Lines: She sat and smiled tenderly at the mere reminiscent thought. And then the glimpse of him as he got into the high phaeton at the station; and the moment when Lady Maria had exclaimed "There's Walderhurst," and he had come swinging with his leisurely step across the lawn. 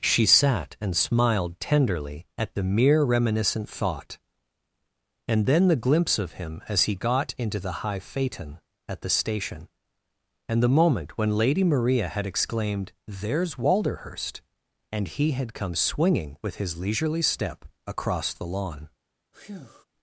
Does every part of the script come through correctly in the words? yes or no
yes